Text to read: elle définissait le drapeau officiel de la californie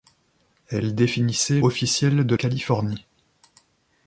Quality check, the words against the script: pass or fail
fail